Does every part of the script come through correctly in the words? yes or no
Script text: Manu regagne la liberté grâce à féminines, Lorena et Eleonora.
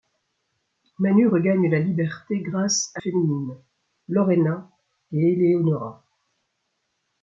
yes